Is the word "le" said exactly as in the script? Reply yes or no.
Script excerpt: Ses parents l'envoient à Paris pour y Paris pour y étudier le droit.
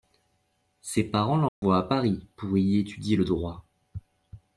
yes